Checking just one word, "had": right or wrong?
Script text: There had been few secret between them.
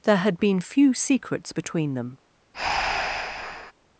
right